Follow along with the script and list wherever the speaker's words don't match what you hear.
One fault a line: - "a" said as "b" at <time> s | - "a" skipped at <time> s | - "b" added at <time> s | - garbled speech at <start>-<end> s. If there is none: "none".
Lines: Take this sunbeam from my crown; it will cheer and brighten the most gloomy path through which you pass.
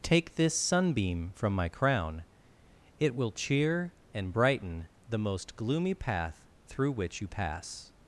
none